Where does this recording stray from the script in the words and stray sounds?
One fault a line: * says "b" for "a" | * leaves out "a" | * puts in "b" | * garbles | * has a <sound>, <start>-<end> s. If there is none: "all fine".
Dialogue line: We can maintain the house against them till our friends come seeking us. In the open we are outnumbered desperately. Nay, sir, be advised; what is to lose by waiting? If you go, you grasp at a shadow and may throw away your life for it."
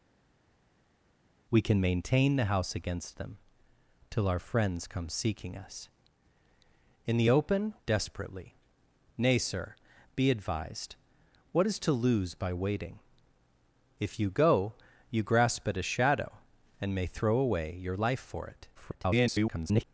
* leaves out "we are outnumbered"
* garbles